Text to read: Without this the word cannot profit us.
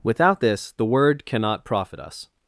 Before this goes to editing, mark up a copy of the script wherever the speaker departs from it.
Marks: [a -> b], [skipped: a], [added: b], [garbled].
Without this the word cannot profit us.